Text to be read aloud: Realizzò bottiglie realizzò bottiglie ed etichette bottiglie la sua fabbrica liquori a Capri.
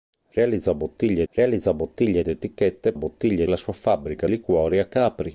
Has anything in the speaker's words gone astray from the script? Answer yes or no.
no